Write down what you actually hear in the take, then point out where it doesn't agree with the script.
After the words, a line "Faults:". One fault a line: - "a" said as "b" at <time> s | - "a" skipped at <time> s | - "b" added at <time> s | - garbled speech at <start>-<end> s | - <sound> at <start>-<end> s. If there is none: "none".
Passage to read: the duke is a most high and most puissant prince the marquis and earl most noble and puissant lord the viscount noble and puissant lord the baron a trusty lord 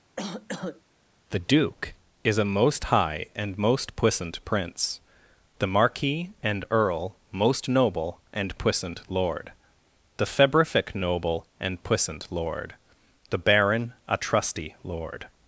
the duke is a most high and most puissant prince the marquis and earl most noble and puissant lord the febrific noble and puissant lord the baron a trusty lord
Faults:
- cough at 0.2-0.8 s
- "viscount" said as "febrific" at 10.3 s